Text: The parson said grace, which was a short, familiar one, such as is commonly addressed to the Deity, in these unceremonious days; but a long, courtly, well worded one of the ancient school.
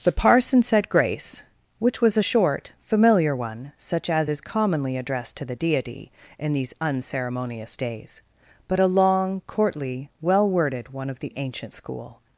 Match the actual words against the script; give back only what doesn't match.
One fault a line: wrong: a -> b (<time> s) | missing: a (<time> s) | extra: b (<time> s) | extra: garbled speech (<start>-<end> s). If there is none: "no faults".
no faults